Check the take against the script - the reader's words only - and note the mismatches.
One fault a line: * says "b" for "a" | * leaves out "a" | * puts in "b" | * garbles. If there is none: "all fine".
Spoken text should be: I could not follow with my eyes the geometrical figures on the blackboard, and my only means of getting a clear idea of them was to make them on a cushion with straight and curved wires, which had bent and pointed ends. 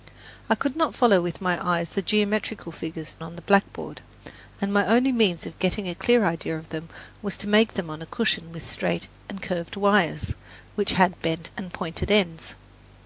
all fine